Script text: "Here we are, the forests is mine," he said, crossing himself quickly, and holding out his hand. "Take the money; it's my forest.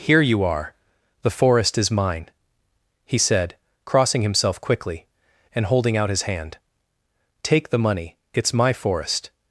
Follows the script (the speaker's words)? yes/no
no